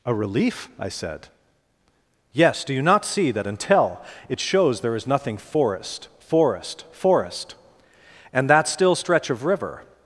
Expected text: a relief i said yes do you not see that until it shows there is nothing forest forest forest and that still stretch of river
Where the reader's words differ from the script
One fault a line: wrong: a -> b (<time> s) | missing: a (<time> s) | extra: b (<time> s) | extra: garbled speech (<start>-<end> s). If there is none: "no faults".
no faults